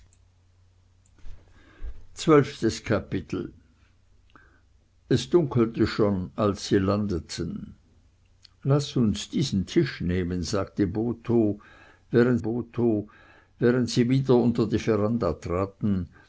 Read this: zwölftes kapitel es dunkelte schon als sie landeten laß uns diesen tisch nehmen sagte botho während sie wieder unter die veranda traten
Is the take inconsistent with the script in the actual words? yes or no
yes